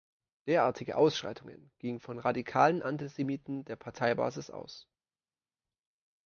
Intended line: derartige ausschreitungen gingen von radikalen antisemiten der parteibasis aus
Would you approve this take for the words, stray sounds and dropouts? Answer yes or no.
yes